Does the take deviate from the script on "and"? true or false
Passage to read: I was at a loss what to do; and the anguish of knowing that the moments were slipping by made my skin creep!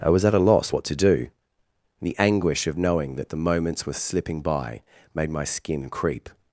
true